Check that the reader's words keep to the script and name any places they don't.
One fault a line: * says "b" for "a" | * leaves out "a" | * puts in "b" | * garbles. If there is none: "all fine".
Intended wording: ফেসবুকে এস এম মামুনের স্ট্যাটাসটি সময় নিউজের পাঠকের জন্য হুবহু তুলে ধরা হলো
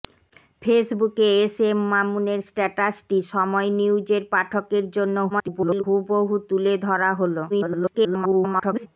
* garbles
* garbles